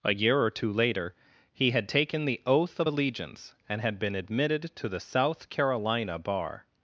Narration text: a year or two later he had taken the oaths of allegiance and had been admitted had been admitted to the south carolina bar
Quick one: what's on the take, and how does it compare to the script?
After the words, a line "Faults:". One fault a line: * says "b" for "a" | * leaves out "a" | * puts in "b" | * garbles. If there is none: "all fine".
a year or two later he had taken the oath of allegiance and had been admitted to the south carolina bar
Faults:
* says "oath" for "oaths"
* leaves out "had been admitted"